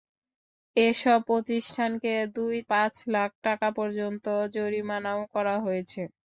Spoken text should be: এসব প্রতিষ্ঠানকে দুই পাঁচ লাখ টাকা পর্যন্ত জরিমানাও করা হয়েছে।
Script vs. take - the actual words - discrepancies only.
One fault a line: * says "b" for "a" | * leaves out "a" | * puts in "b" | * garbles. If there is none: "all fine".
all fine